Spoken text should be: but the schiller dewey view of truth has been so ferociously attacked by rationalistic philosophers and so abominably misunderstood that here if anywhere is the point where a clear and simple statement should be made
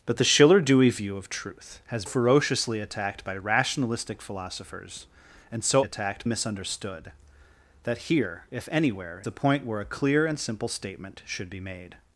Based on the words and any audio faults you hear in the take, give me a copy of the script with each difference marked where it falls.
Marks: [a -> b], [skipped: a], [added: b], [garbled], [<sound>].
but the schiller dewey view of truth has [skipped: been so] ferociously attacked by rationalistic philosophers and so [abominably -> attacked] misunderstood that here if anywhere [skipped: is] the point where a clear and simple statement should be made